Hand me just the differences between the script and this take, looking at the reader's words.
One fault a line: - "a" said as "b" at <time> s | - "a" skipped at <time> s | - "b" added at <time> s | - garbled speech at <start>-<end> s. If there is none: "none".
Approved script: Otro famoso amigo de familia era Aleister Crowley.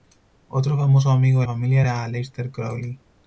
none